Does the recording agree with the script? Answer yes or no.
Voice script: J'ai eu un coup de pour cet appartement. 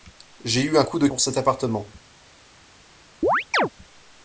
yes